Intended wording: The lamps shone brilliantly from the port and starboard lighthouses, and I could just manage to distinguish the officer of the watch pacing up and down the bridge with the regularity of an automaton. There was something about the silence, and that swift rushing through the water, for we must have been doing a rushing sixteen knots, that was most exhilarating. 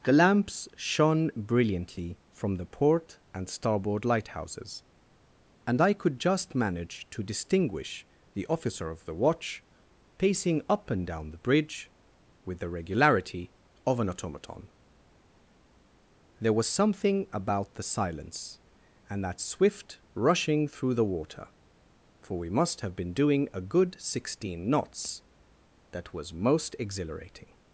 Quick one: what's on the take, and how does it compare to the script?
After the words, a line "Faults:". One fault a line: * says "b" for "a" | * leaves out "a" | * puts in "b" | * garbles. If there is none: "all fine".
The lamps shone brilliantly from the port and starboard lighthouses, and I could just manage to distinguish the officer of the watch pacing up and down the bridge with the regularity of an automaton. There was something about the silence, and that swift rushing through the water, for we must have been doing a good sixteen knots, that was most exhilarating.
Faults:
* says "good" for "rushing"